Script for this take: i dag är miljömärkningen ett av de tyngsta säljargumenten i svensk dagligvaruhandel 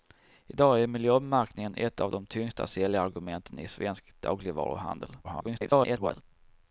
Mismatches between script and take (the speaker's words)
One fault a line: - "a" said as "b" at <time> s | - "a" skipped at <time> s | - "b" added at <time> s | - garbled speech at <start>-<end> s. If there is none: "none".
- garbled speech at 5.2-6.2 s